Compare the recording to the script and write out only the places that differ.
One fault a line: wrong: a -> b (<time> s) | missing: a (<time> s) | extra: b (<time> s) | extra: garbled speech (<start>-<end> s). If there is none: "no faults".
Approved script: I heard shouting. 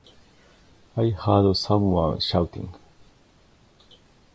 extra: someone (1.6 s)